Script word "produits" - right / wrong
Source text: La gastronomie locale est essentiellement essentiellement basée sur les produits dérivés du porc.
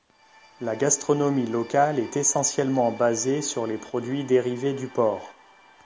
right